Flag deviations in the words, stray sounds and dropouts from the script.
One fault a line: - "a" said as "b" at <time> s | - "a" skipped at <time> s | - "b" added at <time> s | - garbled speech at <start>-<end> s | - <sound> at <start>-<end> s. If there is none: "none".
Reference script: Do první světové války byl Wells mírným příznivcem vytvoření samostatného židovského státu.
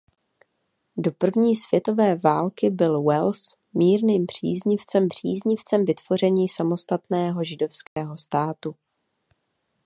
- "příznivcem" added at 5.1 s
- dropout at 7.9-8.0 s